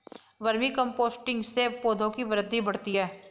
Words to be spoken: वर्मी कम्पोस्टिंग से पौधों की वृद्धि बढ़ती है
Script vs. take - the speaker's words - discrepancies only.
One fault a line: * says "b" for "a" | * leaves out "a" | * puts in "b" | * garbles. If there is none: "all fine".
all fine